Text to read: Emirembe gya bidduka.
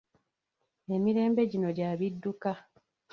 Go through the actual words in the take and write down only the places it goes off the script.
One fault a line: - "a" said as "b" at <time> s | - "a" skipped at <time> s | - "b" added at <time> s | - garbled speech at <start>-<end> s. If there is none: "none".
- "gino" added at 1.5 s